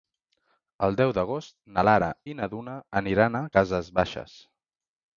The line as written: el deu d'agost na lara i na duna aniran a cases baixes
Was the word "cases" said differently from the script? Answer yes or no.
no